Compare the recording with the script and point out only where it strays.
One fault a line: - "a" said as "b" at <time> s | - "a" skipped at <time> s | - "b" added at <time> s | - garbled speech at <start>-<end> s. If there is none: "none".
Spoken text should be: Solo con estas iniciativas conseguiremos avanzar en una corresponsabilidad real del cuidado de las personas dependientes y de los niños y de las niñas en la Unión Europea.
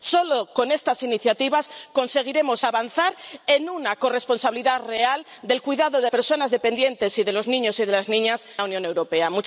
- "las" skipped at 6.1 s
- "en" skipped at 8.5 s